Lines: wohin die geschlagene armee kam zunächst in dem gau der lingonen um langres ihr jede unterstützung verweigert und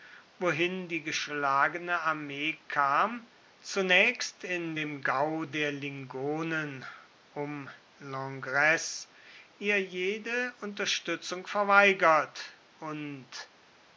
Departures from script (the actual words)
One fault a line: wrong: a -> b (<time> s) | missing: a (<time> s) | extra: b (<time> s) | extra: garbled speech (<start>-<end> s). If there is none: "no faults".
no faults